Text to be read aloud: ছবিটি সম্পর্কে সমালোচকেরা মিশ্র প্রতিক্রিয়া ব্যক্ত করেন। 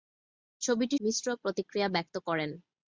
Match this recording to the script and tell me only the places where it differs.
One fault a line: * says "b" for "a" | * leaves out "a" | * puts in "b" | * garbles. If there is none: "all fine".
* leaves out "সম্পর্কে সমালোচকেরা"